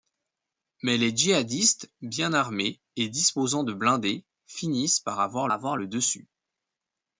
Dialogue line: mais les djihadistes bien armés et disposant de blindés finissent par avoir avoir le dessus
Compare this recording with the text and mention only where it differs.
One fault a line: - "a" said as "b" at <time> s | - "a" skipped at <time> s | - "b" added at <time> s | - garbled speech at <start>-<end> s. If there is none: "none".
none